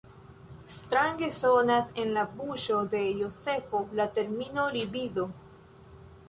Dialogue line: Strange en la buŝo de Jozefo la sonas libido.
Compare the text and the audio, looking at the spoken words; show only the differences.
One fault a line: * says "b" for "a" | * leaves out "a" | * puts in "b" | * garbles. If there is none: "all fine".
* puts in "sonas"
* says "termino" for "sonas"